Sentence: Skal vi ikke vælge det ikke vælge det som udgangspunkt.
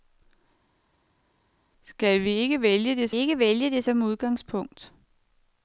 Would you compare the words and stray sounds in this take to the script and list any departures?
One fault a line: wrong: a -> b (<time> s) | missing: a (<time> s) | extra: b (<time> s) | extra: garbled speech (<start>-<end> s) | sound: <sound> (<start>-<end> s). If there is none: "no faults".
no faults